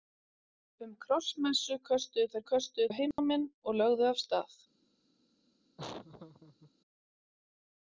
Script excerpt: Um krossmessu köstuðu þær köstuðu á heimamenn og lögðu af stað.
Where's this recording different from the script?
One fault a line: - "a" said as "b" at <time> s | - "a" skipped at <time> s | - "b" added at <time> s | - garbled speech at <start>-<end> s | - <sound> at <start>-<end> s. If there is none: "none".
- dropout at 3.1-3.2 s
- laugh at 5.8-6.7 s